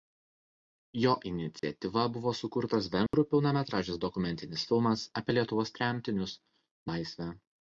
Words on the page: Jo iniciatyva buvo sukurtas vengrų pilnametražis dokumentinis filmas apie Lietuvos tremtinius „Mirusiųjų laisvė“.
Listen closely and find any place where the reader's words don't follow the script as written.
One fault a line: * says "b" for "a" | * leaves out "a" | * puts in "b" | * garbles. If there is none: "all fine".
* leaves out "Mirusiųjų"